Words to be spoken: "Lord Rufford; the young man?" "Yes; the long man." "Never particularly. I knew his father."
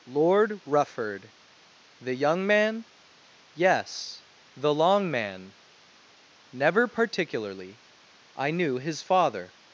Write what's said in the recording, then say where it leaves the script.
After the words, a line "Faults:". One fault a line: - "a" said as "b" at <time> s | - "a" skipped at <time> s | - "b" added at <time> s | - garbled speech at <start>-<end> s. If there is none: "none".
"Lord Rufford; the young man?" "Yes; the long man." "Never particularly. I knew his father."
Faults:
none